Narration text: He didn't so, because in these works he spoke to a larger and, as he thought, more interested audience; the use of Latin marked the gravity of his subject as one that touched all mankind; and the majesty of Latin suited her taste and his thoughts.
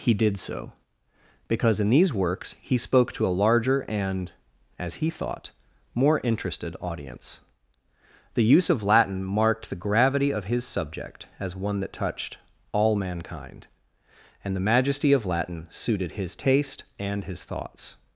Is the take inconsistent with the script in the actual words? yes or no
yes